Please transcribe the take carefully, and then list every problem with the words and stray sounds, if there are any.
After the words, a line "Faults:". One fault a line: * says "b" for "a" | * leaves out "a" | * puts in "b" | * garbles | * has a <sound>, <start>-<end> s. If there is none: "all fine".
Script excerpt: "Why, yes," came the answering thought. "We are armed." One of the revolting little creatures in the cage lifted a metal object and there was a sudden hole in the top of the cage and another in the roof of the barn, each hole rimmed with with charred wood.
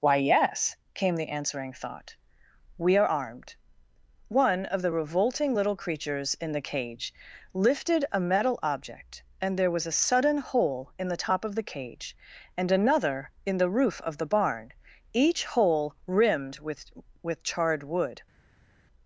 "Why, yes," came the answering thought. "We are armed." One of the revolting little creatures in the cage lifted a metal object and there was a sudden hole in the top of the cage and another in the roof of the barn, each hole rimmed with with charred wood.
Faults:
all fine